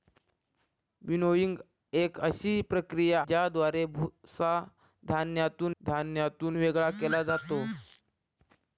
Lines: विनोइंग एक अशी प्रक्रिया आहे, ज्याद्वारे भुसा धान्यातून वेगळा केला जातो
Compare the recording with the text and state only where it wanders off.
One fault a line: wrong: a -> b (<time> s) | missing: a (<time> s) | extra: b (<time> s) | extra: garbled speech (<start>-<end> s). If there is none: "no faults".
missing: आहे (3.2 s)
extra: धान्यातून (5.8 s)